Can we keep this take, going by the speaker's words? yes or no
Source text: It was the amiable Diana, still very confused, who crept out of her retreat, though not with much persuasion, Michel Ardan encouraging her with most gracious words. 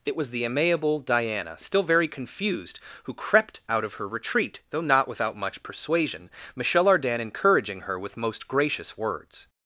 no